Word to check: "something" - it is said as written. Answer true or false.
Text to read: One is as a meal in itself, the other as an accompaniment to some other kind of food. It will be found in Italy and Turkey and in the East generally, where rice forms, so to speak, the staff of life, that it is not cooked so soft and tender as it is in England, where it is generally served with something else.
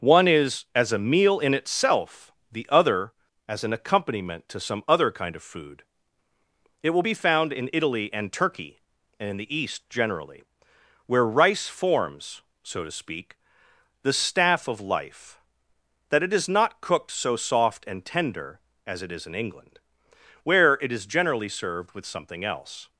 true